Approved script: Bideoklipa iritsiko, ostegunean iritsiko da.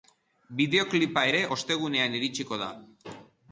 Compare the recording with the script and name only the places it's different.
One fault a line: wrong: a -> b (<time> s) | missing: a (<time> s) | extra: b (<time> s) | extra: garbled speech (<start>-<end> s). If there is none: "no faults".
wrong: iritsiko -> ere (1.3 s)